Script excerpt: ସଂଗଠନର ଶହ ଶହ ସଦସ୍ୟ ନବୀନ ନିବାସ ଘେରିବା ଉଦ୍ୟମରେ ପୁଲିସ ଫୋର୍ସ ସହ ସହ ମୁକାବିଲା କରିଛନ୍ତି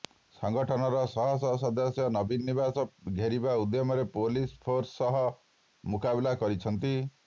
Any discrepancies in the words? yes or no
yes